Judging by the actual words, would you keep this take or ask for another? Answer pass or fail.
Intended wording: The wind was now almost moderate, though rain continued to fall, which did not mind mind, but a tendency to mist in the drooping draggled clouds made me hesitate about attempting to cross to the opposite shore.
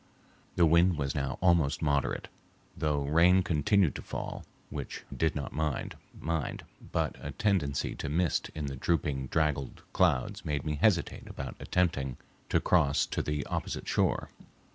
pass